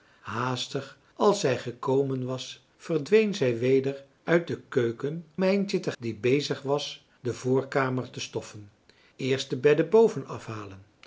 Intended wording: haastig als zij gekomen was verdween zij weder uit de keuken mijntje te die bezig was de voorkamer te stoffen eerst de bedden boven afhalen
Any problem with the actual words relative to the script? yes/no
no